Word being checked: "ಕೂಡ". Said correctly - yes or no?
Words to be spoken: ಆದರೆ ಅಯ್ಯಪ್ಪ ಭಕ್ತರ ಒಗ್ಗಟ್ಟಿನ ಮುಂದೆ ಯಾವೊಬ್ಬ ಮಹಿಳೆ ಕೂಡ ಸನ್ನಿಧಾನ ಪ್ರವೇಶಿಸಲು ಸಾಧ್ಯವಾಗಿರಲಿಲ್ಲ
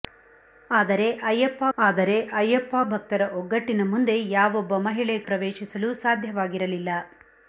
no